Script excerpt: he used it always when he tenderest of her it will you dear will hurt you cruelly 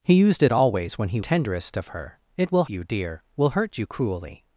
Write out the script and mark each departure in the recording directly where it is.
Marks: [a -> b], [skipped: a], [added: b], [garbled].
he used it always when he tenderest of her it will you dear will hurt you cruelly